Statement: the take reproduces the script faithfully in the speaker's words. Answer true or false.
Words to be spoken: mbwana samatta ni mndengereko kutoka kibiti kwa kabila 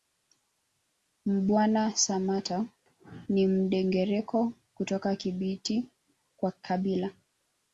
true